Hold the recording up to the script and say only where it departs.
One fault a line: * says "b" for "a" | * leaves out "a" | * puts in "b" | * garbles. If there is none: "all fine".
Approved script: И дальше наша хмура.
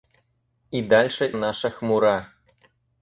all fine